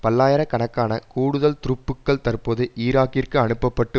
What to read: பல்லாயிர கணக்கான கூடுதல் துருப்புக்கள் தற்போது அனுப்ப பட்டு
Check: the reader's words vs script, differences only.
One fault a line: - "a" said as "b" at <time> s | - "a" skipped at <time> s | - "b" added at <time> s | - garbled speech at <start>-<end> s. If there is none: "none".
- "ஈராக்கிற்கு" added at 2.8 s